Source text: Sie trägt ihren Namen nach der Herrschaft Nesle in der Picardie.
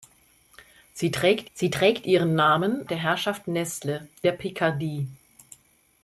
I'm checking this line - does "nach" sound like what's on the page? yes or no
no